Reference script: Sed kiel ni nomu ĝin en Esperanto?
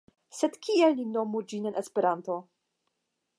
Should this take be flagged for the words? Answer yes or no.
no